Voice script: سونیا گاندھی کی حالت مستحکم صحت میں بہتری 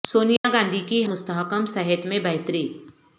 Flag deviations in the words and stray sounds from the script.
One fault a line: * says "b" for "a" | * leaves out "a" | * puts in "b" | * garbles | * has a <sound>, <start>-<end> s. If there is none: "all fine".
* has a dropout, 0.4-0.4 s
* leaves out "حالت"